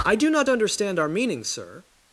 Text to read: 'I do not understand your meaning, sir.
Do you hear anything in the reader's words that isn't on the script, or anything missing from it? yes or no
yes